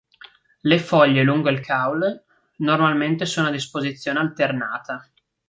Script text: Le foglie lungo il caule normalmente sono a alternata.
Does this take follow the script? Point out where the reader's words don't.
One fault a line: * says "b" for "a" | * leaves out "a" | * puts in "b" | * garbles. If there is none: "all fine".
* puts in "disposizione"